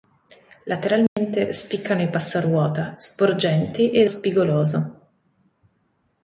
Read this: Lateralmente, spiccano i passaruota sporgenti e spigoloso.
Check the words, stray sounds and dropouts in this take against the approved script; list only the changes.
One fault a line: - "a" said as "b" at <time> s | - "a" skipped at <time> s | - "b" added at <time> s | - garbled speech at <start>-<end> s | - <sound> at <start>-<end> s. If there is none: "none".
- dropout at 1.1-1.2 s